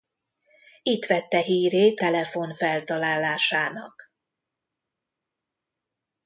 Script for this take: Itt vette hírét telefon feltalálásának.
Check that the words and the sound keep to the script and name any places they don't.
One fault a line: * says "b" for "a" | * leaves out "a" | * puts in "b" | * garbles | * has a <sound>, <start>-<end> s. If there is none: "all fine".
all fine